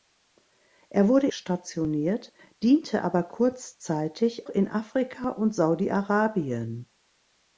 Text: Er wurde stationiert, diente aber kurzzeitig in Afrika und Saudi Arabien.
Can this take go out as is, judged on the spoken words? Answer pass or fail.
pass